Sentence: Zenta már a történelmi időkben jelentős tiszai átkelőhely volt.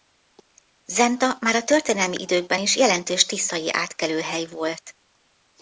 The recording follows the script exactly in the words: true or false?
false